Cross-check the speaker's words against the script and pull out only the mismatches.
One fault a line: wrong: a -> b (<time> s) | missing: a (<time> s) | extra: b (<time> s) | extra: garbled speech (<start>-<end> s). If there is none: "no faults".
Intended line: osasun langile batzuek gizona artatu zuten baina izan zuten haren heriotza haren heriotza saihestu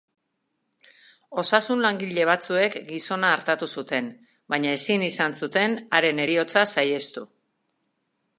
extra: ezin (4.8 s)
missing: haren heriotza (6.6 s)